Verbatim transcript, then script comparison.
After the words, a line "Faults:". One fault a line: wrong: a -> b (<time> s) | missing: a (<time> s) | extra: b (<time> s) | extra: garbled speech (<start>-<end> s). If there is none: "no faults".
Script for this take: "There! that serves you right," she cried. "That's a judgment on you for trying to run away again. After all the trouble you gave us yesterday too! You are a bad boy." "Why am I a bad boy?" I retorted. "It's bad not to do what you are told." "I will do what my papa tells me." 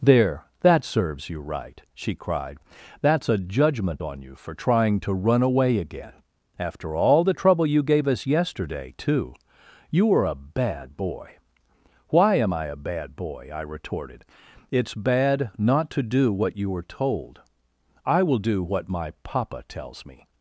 "There! that serves you right," she cried. "That's a judgment on you for trying to run away again. After all the trouble you gave us yesterday too! You were a bad boy." "Why am I a bad boy?" I retorted. "It's bad not to do what you were told." "I will do what my papa tells me."
Faults:
wrong: are -> were (10.0 s)
wrong: are -> were (16.7 s)